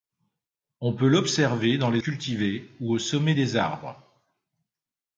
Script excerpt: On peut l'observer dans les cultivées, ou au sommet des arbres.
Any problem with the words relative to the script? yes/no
no